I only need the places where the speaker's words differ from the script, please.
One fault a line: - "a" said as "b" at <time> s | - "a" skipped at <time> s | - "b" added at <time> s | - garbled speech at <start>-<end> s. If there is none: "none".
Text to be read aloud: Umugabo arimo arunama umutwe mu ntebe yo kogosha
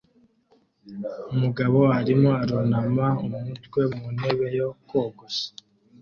none